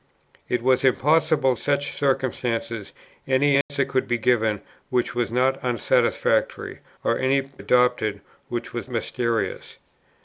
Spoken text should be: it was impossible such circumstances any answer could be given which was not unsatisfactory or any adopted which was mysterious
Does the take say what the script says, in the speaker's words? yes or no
yes